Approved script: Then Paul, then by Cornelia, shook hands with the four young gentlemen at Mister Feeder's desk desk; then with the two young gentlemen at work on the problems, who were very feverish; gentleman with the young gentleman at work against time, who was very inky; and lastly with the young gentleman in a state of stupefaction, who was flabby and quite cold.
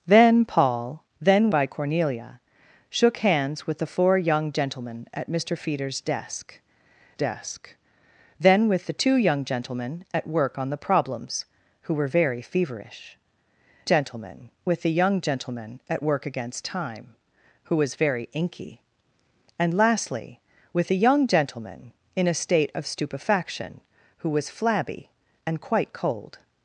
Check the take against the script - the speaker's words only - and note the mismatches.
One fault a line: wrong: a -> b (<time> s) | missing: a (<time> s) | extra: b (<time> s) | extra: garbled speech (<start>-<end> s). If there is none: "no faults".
no faults